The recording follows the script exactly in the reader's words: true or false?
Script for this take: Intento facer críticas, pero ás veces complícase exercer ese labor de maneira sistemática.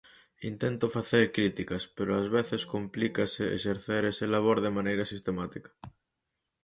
true